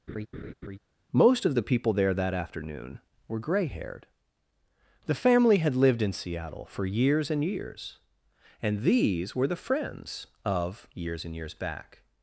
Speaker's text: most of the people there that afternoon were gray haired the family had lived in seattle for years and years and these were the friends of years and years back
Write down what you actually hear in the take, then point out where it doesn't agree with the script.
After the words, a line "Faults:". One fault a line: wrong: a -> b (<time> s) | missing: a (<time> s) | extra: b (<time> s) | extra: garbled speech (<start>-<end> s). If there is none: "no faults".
most of the people there that afternoon were gray haired the family had lived in seattle for years and years and these were the friends of years and years back
Faults:
no faults